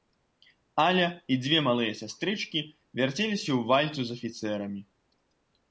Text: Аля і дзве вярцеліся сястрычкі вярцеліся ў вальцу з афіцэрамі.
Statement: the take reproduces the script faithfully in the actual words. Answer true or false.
false